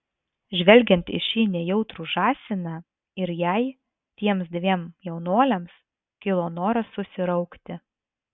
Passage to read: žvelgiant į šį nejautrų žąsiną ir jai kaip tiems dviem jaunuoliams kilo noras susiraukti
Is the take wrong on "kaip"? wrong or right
wrong